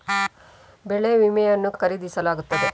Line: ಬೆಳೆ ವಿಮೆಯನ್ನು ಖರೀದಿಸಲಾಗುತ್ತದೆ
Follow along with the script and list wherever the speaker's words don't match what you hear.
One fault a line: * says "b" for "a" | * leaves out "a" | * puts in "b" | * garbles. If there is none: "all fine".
all fine